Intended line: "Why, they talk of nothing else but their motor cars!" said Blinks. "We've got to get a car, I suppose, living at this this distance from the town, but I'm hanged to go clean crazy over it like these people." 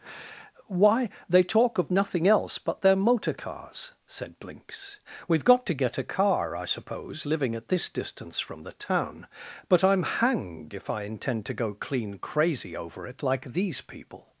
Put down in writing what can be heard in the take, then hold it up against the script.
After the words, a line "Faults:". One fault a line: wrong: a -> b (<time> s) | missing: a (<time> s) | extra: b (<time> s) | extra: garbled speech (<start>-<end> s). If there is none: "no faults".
"Why, they talk of nothing else but their motor cars!" said Blinks. "We've got to get a car, I suppose, living at this distance from the town, but I'm hanged if I intend to go clean crazy over it like these people."
Faults:
missing: this (7.9 s)
extra: if I intend (10.7 s)